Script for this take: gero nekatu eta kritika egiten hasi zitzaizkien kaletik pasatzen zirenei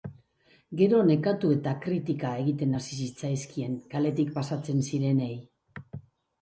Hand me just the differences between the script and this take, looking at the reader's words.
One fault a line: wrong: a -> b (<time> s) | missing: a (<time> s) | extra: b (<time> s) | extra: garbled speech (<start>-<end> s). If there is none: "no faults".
no faults